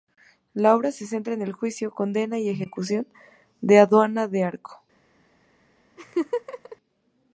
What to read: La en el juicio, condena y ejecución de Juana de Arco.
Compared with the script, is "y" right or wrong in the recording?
right